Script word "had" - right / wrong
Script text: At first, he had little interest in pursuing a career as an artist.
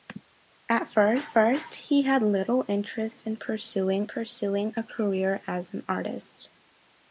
right